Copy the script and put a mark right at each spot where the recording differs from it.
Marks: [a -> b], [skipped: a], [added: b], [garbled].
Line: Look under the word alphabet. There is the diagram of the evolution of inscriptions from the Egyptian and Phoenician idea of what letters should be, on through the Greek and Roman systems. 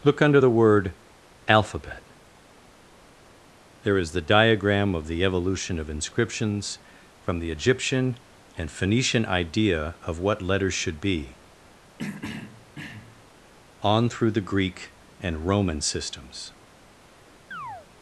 Look under the word alphabet. There is the diagram of the evolution of inscriptions from the Egyptian and Phoenician idea of what letters should be, on through the Greek and Roman systems.